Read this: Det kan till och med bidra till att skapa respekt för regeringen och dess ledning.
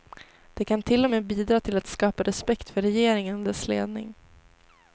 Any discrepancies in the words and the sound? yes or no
no